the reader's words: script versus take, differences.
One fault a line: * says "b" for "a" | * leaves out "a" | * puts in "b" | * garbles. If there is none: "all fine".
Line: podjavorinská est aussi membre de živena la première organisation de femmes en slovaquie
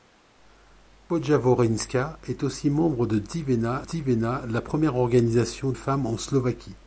* puts in "živena"
* leaves out "de"